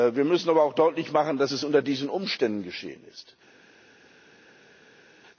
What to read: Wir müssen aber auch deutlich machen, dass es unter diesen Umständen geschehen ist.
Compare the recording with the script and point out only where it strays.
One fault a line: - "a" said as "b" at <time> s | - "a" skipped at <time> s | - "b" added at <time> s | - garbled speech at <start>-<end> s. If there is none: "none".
none